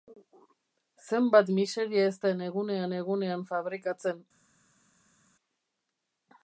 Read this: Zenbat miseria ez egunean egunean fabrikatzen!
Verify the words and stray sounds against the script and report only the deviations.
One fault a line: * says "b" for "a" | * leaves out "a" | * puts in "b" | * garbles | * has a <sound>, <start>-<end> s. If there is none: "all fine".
* puts in "den"